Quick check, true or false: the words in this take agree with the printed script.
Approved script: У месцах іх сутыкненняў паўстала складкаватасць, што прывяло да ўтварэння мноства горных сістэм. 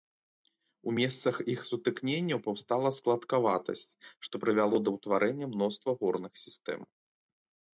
true